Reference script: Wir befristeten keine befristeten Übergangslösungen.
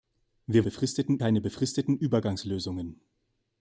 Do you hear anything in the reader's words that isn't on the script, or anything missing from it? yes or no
no